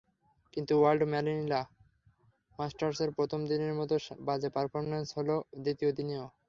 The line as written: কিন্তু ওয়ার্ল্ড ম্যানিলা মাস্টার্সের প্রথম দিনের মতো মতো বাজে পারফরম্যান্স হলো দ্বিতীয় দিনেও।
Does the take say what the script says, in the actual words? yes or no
no